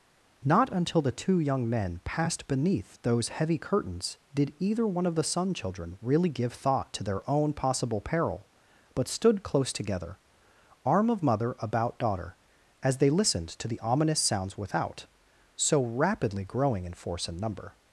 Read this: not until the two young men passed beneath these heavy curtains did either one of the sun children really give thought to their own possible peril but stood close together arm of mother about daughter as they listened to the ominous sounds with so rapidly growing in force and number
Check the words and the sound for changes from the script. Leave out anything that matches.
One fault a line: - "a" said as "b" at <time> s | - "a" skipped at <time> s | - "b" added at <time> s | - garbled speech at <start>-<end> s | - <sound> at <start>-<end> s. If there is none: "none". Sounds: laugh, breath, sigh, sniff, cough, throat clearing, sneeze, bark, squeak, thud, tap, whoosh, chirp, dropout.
- "these" said as "those" at 3.0 s
- "with" said as "without" at 14.6 s